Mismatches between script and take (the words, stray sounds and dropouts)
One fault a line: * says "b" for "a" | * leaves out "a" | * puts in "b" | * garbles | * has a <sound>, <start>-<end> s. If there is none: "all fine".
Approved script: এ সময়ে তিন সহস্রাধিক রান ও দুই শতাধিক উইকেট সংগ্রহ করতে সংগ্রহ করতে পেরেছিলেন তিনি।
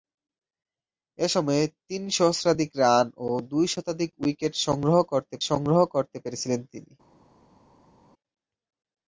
all fine